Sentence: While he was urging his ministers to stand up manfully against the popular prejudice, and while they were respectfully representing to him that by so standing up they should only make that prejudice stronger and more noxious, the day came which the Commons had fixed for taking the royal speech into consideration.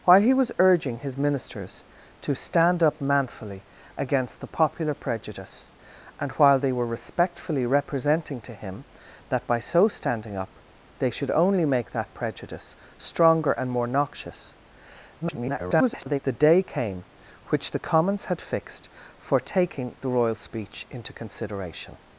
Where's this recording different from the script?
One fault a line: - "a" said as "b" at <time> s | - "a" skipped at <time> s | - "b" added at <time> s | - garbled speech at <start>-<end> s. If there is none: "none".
- garbled speech at 15.2-16.2 s